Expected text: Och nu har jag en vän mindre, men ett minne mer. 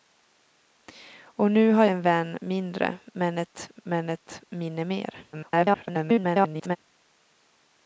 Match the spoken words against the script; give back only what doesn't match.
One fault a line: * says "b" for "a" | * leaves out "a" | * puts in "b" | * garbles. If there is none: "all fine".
* leaves out "jag"
* puts in "men ett"
* garbles